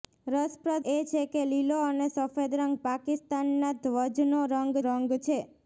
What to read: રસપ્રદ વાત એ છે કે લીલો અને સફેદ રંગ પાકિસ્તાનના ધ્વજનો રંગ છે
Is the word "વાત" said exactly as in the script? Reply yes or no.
no